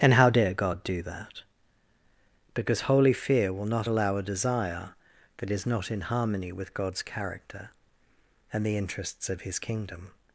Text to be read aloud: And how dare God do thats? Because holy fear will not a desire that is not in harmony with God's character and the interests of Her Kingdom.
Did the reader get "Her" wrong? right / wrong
wrong